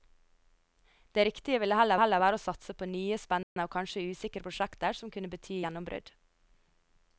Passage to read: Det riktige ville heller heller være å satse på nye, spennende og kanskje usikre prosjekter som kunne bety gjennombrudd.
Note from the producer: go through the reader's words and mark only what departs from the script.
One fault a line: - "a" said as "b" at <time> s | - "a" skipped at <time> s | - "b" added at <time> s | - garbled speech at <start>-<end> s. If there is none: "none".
none